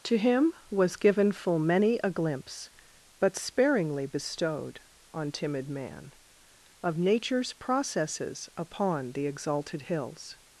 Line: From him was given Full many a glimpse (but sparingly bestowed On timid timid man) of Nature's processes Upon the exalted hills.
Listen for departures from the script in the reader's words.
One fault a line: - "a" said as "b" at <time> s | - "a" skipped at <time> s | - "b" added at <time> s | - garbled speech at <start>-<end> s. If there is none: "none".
- "From" said as "To" at 0.0 s
- "timid" skipped at 5.7 s